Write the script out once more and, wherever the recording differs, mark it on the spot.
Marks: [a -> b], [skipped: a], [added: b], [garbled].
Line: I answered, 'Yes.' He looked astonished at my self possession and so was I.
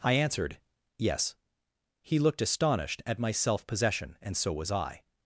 I answered, 'Yes.' He looked astonished at my self possession and so was I.